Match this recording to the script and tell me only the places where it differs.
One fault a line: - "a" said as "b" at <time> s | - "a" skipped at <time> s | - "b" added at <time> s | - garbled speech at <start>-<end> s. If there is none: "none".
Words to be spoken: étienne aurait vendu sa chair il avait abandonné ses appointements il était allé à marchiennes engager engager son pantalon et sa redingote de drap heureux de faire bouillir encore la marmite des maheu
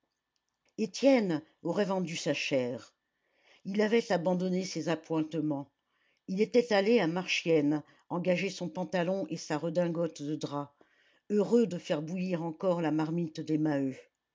- "engager" skipped at 8.5 s